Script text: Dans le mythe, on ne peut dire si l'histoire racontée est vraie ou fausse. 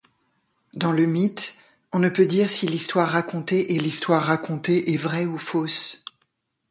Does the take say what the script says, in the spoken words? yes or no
no